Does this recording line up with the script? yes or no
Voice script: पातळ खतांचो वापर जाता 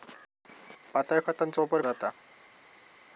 yes